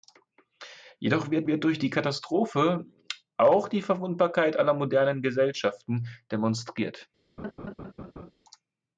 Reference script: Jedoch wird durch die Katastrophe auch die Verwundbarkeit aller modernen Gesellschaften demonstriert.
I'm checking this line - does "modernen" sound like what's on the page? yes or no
yes